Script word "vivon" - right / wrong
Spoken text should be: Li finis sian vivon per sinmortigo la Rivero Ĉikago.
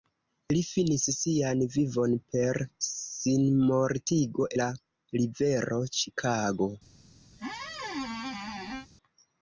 right